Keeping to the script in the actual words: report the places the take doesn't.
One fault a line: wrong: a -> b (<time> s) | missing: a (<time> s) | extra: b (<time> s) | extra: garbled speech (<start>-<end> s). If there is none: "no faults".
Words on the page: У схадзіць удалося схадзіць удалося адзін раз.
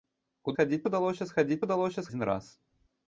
no faults